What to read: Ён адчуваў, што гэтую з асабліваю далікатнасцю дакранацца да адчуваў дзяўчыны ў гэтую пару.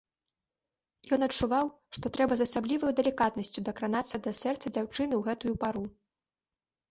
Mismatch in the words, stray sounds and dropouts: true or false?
true